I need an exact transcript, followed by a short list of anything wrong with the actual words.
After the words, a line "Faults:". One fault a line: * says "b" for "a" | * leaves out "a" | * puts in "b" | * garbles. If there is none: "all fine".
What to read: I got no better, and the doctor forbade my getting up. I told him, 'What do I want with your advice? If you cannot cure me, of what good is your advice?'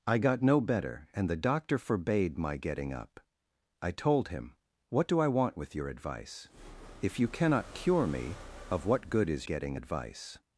I got no better, and the doctor forbade my getting up. I told him, 'What do I want with your advice? If you cannot cure me, of what good is getting advice?'
Faults:
* says "getting" for "your"